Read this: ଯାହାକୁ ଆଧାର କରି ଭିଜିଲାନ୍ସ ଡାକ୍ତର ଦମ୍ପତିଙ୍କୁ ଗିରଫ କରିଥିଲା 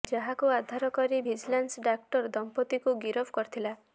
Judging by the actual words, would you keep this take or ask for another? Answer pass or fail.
pass